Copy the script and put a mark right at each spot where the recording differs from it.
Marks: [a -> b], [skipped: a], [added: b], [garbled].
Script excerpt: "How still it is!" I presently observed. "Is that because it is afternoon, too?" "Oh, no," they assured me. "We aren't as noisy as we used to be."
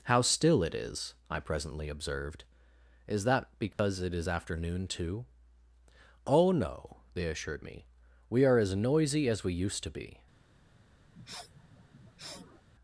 "How still it is!" I presently observed. "Is that because it is afternoon, too?" "Oh, no," they assured me. "We [aren't -> are] as noisy as we used to be."